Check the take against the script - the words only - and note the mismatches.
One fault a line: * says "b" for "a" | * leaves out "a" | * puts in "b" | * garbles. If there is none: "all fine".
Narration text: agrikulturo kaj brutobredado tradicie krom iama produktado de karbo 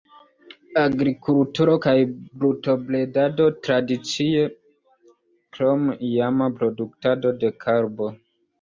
all fine